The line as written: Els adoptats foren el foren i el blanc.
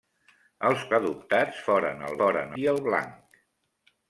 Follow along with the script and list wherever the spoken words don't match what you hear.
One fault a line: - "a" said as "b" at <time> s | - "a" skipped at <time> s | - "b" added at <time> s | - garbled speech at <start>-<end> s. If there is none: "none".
none